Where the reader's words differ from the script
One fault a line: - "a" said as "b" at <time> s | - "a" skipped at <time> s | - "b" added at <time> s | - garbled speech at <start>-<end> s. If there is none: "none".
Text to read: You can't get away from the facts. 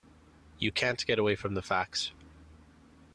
none